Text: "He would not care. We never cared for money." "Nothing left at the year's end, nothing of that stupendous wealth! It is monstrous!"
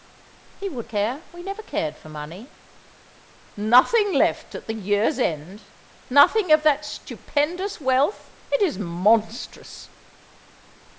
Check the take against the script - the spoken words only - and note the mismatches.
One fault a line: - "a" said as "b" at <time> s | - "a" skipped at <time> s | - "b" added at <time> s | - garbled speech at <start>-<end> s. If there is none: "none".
- "not" skipped at 0.9 s